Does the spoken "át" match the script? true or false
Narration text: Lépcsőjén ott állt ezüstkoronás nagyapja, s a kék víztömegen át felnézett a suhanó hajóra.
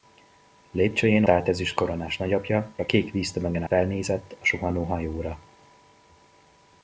false